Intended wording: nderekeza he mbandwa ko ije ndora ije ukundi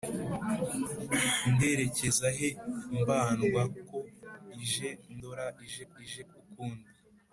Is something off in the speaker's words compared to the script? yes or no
yes